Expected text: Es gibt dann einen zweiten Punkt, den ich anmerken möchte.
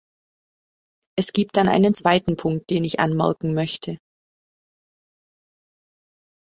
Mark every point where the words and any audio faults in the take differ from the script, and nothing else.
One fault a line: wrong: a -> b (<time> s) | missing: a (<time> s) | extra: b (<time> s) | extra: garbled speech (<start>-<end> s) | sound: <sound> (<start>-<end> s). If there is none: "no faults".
no faults